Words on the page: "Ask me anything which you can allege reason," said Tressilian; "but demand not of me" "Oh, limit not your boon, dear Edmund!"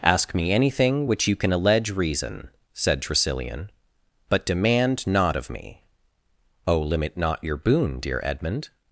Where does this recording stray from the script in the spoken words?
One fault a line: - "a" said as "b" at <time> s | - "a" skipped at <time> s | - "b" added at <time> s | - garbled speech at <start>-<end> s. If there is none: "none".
none